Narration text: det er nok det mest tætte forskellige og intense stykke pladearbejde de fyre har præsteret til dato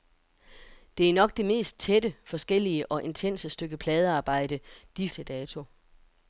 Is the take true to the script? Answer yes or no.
no